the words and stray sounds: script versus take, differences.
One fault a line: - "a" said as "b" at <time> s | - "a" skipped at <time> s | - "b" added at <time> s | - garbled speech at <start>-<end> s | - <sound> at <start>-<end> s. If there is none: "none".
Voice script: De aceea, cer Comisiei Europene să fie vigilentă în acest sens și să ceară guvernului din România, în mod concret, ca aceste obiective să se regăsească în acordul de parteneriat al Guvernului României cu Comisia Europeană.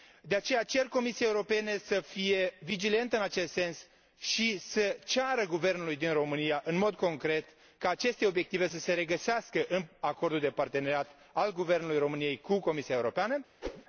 - whoosh at 13.6-13.8 s